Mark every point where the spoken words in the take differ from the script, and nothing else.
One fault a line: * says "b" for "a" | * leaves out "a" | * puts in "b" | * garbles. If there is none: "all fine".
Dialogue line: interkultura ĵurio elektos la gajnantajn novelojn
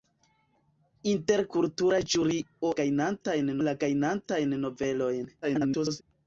* says "gajnantajn" for "elektos"
* garbles